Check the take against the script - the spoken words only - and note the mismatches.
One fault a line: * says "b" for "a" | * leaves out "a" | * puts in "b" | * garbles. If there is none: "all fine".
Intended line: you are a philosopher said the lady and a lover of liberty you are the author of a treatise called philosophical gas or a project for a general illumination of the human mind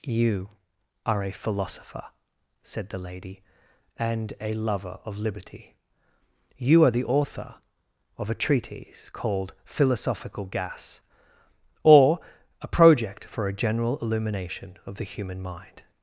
all fine